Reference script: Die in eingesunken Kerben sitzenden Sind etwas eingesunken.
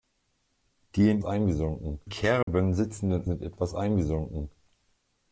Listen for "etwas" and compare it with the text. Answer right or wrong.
right